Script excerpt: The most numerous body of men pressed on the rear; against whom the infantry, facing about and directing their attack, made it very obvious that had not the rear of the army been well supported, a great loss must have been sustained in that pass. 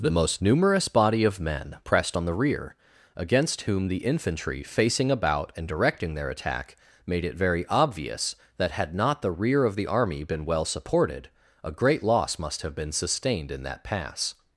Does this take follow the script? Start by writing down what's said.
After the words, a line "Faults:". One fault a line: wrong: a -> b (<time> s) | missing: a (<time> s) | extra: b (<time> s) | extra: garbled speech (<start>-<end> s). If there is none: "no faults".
The most numerous body of men pressed on the rear; against whom the infantry, facing about and directing their attack, made it very obvious that had not the rear of the army been well supported, a great loss must have been sustained in that pass.
Faults:
no faults